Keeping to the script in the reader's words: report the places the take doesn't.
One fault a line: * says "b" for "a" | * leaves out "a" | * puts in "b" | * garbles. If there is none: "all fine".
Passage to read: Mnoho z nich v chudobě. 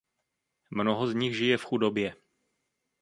* puts in "žije"